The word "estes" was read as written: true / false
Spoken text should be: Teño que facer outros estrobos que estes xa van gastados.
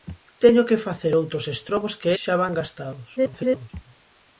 false